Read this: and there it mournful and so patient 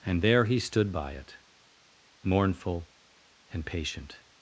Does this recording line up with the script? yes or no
no